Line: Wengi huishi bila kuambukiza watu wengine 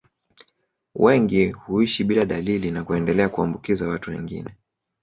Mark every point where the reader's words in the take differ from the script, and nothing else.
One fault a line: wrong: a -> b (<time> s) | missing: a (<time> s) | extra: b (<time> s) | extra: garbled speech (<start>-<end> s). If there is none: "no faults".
extra: dalili na kuendelea (2.2 s)